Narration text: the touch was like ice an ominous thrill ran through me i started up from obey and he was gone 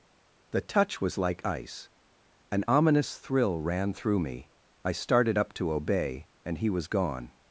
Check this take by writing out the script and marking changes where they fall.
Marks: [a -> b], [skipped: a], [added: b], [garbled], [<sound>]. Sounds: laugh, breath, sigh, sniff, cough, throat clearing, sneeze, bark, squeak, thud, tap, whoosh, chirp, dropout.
the touch was like ice an ominous thrill ran through me i started up [from -> to] obey and he was gone